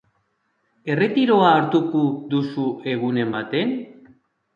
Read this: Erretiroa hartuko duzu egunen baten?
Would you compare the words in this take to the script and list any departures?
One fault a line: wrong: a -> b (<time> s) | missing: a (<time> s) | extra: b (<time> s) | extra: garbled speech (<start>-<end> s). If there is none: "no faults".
no faults